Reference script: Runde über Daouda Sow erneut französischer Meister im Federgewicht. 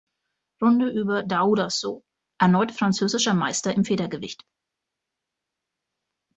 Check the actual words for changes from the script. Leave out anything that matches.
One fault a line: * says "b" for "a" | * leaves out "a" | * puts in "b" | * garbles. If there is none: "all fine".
all fine